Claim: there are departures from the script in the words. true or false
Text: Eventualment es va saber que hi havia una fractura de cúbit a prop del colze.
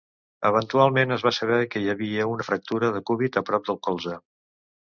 false